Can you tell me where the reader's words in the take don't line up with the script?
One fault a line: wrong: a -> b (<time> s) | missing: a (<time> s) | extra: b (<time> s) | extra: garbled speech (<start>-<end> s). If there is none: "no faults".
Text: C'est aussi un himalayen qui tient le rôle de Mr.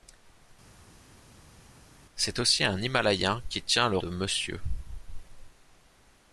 missing: rôle (4.0 s)